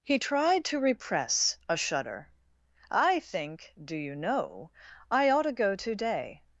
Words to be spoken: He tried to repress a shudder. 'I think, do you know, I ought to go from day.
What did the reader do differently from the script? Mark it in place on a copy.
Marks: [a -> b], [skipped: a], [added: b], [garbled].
He tried to repress a shudder. 'I think, do you know, I ought to go [from -> to] day.